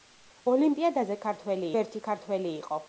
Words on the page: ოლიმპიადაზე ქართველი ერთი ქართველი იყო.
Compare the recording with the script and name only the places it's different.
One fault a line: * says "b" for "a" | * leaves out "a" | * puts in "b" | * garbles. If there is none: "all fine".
all fine